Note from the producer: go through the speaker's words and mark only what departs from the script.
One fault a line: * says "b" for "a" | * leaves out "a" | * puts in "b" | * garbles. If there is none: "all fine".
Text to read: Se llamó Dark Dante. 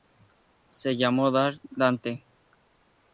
all fine